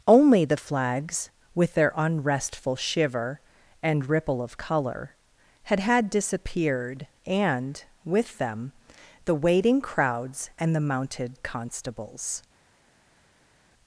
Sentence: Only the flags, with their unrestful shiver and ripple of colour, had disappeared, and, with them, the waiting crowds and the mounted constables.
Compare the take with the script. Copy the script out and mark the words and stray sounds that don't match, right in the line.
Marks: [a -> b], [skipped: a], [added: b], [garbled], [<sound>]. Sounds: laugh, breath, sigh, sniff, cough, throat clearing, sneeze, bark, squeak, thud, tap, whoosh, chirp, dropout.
Only the flags, with their unrestful shiver and ripple of colour, had [added: had] disappeared, and, with them, the waiting crowds and the mounted constables.